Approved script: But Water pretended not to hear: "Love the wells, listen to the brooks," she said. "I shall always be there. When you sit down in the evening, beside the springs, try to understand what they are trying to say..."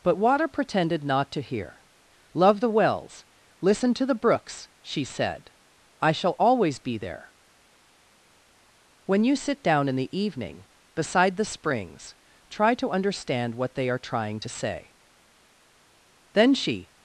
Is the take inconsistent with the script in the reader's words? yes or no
yes